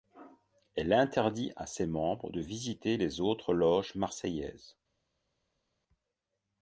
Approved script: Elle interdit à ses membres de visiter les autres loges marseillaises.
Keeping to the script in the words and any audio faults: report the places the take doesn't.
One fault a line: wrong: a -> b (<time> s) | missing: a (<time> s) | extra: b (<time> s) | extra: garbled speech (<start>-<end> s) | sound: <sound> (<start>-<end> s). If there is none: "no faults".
no faults